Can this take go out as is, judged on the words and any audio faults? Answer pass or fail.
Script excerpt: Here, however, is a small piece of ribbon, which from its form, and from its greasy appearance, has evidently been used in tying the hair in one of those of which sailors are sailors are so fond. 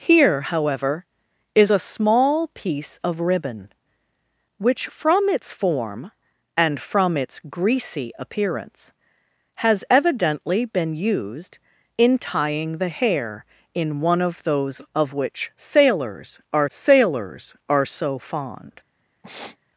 fail